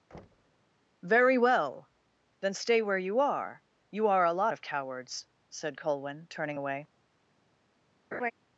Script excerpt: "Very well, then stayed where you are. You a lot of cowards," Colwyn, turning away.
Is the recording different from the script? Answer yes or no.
yes